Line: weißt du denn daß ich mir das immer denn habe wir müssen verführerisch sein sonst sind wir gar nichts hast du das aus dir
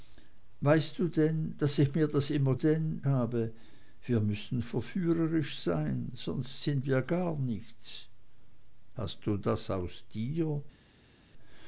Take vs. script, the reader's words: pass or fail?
pass